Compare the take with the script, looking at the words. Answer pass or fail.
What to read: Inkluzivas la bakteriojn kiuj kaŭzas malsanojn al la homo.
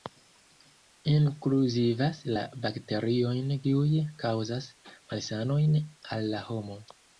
pass